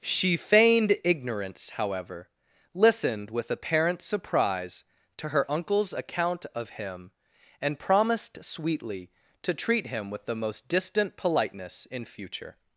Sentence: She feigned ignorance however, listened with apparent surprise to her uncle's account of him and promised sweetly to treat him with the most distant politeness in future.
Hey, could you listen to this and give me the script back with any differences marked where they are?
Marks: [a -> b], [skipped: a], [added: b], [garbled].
She feigned ignorance however, listened with apparent surprise to her uncle's account of him and promised sweetly to treat him with the most distant politeness in future.